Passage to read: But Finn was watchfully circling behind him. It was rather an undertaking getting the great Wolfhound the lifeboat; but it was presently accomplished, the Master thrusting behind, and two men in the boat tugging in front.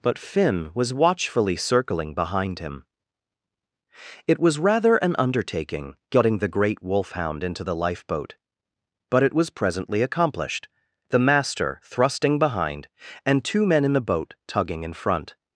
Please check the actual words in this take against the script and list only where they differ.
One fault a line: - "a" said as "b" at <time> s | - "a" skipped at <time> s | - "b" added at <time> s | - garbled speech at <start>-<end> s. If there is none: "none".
- "into" added at 7.4 s